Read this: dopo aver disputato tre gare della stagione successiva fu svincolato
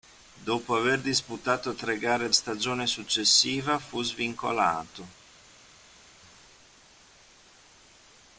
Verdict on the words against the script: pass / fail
fail